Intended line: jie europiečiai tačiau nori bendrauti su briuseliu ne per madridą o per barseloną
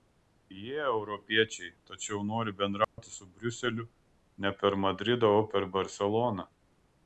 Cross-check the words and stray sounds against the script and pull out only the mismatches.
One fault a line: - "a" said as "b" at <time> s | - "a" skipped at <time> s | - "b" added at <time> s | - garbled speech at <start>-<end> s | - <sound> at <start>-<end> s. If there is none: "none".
- dropout at 2.8-3.0 s